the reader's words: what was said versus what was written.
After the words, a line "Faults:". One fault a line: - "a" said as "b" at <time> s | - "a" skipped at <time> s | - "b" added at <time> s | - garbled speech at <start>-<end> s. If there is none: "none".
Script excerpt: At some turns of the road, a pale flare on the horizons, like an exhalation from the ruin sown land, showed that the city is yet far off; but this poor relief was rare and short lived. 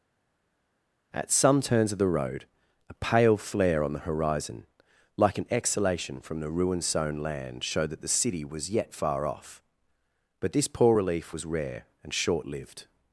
At some turns of the road, a pale flare on the horizon, like an exhalation from the ruin sown land, showed that the city was yet far off; but this poor relief was rare and short lived.
Faults:
- "horizons" said as "horizon" at 4.0 s
- "is" said as "was" at 8.4 s